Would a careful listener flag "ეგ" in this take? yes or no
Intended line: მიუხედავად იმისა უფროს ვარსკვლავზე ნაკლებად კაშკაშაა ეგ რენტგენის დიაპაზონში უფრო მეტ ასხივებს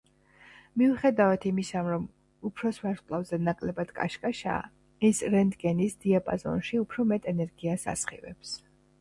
yes